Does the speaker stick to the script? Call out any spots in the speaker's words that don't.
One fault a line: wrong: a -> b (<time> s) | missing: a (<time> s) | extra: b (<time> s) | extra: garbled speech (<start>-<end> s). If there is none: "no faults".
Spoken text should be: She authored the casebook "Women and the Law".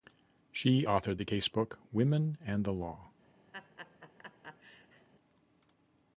no faults